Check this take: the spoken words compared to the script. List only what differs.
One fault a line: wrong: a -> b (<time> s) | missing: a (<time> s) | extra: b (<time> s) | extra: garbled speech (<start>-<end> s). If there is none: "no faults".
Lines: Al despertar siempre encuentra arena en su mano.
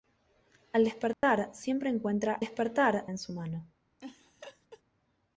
wrong: arena -> despertar (2.4 s)